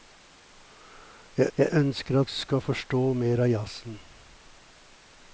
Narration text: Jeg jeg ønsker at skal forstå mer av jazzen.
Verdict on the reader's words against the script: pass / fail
pass